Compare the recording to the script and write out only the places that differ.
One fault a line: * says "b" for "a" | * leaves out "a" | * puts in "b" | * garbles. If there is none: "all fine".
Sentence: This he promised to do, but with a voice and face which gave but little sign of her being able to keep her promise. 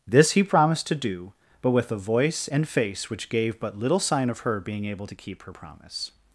all fine